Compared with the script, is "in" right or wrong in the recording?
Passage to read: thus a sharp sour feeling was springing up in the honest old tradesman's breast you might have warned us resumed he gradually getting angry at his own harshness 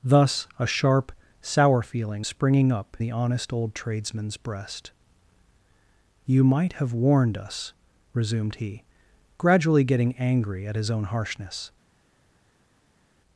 wrong